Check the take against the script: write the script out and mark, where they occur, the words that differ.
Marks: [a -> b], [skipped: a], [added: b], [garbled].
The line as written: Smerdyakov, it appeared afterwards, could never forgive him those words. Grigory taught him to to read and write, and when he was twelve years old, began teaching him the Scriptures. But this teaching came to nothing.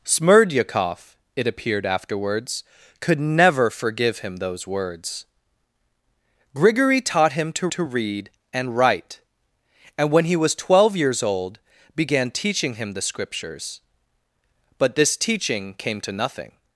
Smerdyakov, it appeared afterwards, could never forgive him those words. Grigory taught him to to read and write, and when he was twelve years old, began teaching him the Scriptures. But this teaching came to nothing.